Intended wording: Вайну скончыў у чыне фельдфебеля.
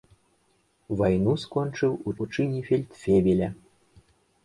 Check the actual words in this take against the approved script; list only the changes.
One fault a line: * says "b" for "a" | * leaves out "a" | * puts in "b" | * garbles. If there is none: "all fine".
* puts in "у"